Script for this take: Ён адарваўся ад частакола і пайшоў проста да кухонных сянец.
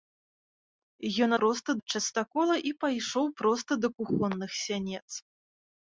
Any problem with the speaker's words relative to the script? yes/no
yes